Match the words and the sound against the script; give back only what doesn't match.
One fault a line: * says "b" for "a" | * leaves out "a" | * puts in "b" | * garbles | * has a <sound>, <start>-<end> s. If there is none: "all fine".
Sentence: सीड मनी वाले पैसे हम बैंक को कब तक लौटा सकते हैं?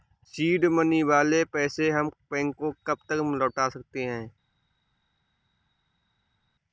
all fine